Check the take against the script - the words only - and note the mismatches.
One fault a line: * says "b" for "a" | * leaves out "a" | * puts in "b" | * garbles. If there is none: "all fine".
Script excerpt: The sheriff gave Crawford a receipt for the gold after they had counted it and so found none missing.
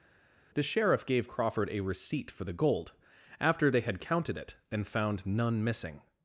* leaves out "so"